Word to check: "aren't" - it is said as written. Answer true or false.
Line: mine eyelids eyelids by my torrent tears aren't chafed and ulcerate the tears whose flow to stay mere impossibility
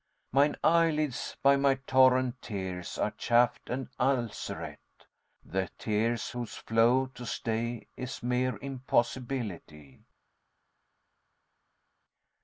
false